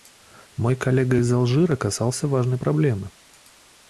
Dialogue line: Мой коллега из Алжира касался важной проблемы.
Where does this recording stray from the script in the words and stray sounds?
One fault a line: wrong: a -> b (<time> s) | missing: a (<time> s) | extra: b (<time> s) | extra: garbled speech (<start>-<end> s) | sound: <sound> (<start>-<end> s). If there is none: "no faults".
no faults